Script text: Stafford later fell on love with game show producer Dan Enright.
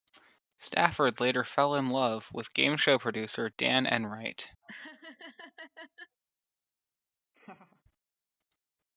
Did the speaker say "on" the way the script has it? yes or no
no